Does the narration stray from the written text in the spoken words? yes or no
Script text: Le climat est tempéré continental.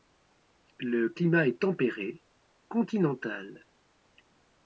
no